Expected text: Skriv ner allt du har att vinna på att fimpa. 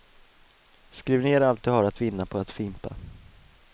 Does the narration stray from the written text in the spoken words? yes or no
no